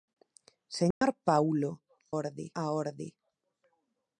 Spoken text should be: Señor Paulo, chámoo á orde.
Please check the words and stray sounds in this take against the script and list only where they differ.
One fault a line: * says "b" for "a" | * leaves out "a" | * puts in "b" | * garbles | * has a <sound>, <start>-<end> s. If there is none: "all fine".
* has a dropout, 0.9-1.0 s
* says "orde" for "chámoo"